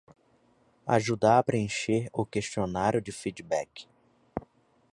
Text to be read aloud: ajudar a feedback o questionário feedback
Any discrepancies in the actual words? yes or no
yes